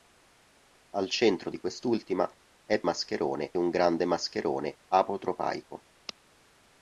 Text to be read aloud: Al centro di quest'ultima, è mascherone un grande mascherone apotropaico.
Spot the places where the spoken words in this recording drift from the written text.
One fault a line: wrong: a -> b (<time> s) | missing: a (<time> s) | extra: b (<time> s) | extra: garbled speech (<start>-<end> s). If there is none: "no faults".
no faults